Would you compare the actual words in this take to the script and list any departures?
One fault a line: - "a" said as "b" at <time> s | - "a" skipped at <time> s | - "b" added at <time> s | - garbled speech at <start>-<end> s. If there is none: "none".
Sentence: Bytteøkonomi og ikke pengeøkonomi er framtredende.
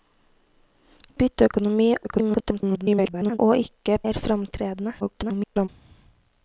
- garbled speech at 2.0-3.4 s
- "pengeøkonomi" skipped at 4.0 s
- garbled speech at 5.0-5.7 s